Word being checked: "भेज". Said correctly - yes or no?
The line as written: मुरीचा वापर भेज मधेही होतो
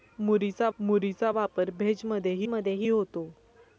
yes